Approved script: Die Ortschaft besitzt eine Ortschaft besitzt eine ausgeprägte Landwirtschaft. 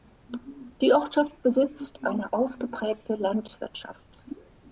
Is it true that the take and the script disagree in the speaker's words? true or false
true